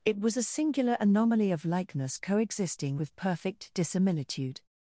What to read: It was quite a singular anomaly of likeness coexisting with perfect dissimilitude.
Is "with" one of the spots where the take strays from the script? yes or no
no